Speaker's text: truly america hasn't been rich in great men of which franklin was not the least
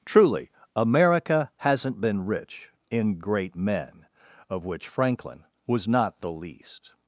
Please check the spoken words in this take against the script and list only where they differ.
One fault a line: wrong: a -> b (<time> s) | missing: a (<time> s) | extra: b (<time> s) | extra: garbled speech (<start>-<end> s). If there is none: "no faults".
no faults